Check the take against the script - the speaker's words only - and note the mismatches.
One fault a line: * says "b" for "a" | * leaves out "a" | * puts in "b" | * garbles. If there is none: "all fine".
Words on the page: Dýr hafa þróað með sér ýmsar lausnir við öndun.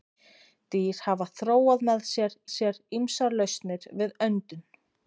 * puts in "sér"